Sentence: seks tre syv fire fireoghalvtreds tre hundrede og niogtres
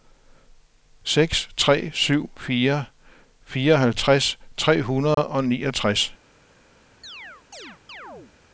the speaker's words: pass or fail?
pass